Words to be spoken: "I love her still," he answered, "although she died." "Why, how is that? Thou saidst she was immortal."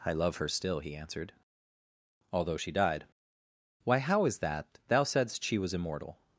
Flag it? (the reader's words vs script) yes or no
no